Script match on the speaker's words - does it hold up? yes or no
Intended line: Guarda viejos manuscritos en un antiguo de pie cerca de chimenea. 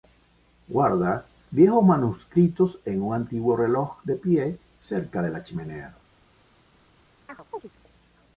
no